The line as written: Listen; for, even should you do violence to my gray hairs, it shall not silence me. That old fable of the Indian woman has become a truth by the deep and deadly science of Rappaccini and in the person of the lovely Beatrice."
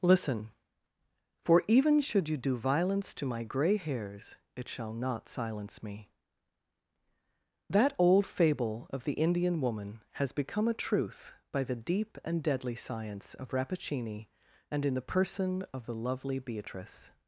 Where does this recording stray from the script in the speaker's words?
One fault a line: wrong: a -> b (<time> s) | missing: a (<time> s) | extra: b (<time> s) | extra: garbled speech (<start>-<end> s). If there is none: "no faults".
no faults